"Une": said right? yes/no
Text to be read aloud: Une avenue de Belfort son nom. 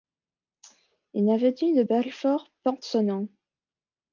yes